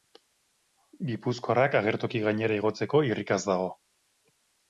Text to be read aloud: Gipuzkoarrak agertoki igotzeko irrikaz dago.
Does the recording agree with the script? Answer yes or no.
no